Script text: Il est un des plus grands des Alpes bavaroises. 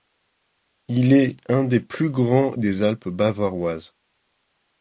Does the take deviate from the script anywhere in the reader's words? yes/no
no